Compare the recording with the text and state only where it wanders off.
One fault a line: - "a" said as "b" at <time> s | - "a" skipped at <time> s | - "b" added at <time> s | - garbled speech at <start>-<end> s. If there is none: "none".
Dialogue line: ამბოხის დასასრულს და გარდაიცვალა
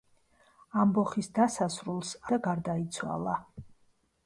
none